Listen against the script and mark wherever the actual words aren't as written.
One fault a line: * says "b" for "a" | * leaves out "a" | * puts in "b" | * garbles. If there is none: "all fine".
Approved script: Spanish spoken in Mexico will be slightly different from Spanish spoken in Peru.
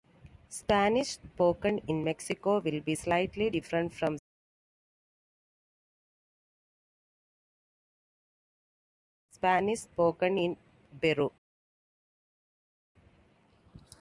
all fine